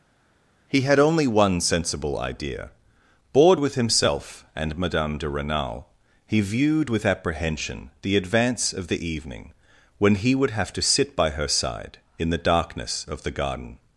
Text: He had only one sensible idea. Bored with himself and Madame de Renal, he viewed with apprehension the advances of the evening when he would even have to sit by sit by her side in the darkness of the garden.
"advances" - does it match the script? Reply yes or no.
no